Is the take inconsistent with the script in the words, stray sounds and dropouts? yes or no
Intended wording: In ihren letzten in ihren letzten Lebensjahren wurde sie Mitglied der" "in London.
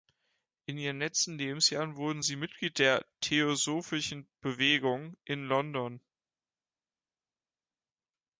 yes